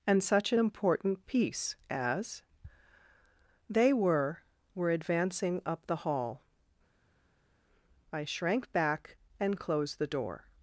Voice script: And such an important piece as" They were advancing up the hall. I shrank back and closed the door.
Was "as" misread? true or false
false